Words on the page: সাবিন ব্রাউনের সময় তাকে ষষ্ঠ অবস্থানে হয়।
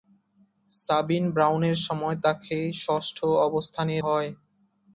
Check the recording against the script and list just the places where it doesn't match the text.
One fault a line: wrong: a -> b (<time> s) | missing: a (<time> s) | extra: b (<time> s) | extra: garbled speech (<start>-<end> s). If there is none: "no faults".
no faults